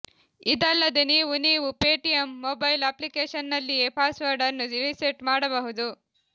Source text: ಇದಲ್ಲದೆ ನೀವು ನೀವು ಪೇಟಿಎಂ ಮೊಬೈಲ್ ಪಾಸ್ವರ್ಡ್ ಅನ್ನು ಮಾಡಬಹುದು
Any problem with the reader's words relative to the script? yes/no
yes